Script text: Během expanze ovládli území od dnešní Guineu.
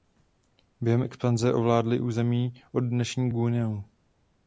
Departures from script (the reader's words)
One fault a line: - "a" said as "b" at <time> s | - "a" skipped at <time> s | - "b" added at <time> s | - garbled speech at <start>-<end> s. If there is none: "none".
none